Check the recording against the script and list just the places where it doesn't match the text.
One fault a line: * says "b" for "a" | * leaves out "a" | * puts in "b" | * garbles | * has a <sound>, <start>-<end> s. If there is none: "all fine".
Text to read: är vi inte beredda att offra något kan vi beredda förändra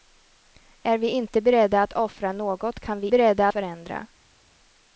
all fine